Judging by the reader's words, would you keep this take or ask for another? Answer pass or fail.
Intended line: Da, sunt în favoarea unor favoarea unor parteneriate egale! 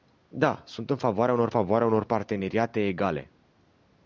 pass